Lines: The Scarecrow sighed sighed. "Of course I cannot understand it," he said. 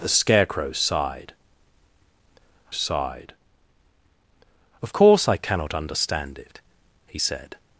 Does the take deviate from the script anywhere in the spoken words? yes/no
no